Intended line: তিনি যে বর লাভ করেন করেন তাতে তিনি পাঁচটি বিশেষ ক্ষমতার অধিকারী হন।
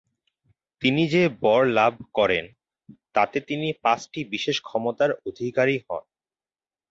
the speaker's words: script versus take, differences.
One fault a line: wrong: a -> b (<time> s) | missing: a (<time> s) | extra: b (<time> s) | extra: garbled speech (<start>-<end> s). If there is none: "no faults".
missing: করেন (2.4 s)